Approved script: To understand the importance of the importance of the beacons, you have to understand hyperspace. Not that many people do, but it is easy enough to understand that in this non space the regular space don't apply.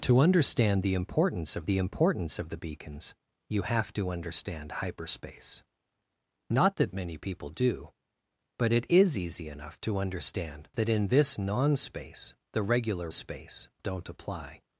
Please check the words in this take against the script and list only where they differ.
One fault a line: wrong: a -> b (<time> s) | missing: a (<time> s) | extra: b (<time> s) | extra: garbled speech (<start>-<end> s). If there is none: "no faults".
no faults